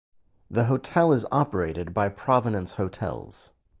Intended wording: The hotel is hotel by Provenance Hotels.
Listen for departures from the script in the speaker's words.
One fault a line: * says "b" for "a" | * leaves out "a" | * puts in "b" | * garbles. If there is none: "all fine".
* says "operated" for "hotel"